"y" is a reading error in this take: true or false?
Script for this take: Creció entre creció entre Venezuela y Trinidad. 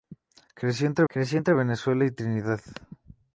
false